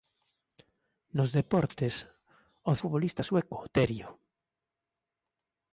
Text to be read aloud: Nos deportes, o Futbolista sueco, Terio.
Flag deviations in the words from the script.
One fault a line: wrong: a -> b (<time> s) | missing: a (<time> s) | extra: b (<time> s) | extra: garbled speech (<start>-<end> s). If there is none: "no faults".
no faults